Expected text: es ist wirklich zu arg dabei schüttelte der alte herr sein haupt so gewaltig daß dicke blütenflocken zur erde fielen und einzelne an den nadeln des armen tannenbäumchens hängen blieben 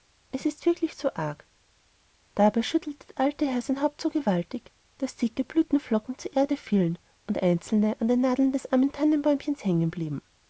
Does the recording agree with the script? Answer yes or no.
yes